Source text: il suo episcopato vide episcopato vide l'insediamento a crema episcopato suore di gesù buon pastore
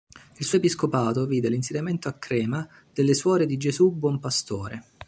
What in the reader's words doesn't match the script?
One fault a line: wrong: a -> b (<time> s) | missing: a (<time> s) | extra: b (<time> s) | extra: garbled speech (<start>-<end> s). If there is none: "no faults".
missing: episcopato vide (1.5 s)
wrong: episcopato -> delle (2.9 s)